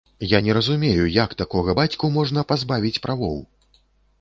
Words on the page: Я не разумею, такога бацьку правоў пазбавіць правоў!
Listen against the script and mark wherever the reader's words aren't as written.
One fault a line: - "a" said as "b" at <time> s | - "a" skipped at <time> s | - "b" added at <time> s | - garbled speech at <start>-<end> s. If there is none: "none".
- "як" added at 1.2 s
- "правоў" said as "можна" at 2.2 s